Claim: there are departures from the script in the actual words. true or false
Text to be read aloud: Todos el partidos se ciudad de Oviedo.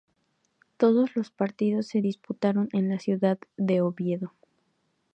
true